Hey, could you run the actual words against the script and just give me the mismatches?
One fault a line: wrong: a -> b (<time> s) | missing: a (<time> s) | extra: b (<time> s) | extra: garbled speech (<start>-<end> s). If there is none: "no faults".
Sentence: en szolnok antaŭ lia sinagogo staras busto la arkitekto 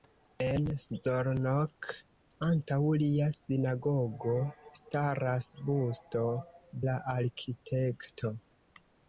no faults